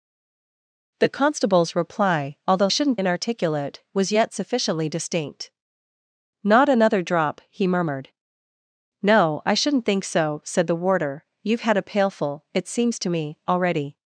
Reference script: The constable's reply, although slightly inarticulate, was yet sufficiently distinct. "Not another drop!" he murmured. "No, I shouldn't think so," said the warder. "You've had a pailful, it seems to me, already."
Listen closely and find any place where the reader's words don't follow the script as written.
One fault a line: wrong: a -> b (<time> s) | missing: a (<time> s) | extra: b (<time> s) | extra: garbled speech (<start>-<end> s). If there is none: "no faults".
wrong: slightly -> shouldn't (2.7 s)